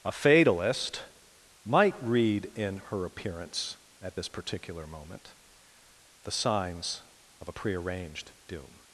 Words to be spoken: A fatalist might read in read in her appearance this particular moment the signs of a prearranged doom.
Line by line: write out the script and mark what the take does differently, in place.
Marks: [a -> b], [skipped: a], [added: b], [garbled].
A fatalist might read in [skipped: read in] her appearance [added: at] this particular moment the signs of a prearranged doom.